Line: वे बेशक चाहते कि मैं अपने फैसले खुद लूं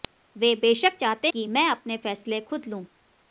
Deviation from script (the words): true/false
false